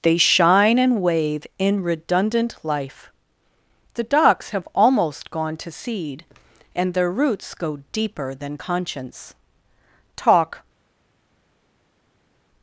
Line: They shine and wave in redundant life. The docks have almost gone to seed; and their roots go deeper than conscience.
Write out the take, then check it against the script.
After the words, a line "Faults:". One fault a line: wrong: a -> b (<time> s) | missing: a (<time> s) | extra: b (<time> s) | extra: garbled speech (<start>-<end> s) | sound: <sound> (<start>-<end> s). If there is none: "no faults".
They shine and wave in redundant life. The docks have almost gone to seed; and their roots go deeper than conscience. Talk
Faults:
extra: Talk (10.2 s)